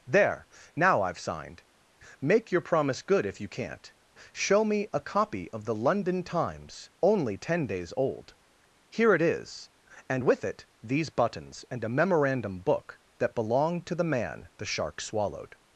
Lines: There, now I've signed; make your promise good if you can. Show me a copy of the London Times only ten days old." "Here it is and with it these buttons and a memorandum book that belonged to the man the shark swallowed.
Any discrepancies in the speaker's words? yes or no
yes